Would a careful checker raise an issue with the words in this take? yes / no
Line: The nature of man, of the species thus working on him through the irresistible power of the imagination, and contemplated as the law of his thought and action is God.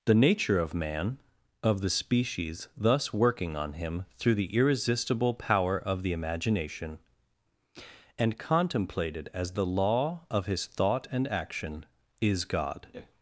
no